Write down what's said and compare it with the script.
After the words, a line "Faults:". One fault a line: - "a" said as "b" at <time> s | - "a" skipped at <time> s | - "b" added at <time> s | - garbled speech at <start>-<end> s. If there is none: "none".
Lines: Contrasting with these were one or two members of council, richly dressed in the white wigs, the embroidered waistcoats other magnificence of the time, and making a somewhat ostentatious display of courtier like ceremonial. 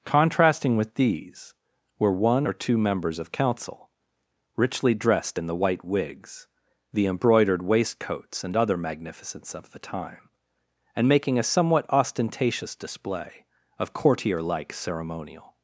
Contrasting with these were one or two members of council, richly dressed in the white wigs, the embroidered waistcoats and other magnificence of the time, and making a somewhat ostentatious display of courtier like ceremonial.
Faults:
- "and" added at 8.4 s